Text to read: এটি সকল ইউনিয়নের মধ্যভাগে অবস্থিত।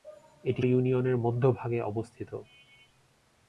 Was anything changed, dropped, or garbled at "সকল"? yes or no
yes